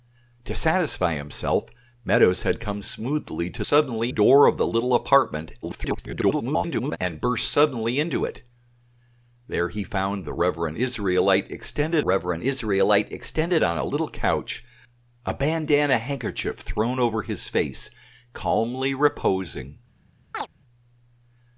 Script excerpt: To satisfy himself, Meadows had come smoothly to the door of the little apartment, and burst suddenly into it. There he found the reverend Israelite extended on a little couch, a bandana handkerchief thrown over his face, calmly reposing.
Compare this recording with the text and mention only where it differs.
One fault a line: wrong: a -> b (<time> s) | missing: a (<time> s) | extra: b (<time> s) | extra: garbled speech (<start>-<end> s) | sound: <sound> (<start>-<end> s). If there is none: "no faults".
wrong: the -> suddenly (3.7 s)
extra: garbled speech (5.6-7.0 s)
extra: reverend Israelite extended (12.0 s)
sound: chirp (20.3-20.5 s)